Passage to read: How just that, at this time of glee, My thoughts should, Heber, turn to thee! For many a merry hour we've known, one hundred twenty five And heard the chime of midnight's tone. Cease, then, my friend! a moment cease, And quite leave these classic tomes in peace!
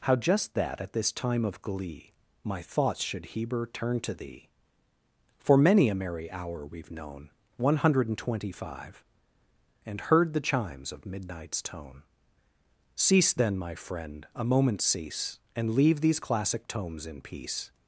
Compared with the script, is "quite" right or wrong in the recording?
wrong